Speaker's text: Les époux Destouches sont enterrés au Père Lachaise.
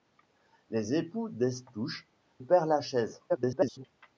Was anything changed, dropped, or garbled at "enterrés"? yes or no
yes